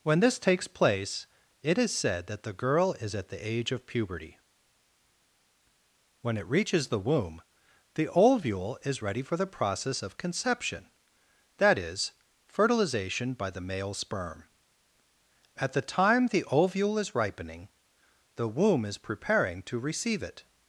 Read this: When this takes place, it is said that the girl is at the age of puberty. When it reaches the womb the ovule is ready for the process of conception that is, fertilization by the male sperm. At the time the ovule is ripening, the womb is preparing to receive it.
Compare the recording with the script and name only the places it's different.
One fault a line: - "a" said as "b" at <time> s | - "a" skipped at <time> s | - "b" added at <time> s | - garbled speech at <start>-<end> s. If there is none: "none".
none